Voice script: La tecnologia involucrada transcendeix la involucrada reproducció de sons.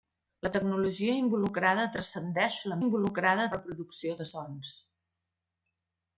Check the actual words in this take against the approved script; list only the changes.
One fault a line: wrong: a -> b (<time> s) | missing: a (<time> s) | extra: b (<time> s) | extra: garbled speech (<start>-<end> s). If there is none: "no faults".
no faults